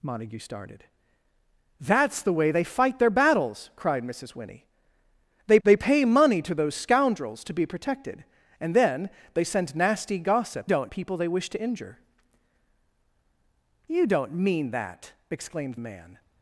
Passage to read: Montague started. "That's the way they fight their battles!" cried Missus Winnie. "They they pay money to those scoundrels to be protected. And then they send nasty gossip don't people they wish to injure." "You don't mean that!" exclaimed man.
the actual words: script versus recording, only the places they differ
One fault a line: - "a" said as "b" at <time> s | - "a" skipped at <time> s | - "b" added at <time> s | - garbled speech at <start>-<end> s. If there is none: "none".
none